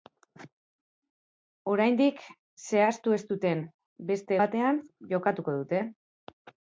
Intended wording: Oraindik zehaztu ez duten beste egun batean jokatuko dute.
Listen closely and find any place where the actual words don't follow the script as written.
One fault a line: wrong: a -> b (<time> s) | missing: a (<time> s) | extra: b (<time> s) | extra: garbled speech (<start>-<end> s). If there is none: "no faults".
missing: egun (4.4 s)